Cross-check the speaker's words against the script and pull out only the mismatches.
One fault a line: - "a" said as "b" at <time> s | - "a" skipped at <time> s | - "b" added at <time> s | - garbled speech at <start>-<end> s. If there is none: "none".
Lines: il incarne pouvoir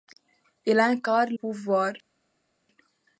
none